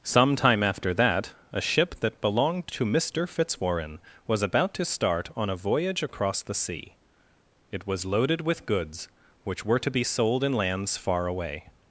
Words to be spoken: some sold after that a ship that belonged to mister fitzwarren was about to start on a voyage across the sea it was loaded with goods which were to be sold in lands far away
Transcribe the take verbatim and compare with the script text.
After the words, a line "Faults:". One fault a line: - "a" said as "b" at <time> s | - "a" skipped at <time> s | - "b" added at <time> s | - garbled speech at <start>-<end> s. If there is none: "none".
some time after that a ship that belonged to mister fitzwarren was about to start on a voyage across the sea it was loaded with goods which were to be sold in lands far away
Faults:
- "sold" said as "time" at 0.3 s